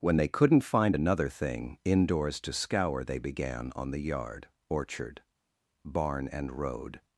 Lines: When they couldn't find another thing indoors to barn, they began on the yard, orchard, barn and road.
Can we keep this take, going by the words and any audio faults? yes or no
no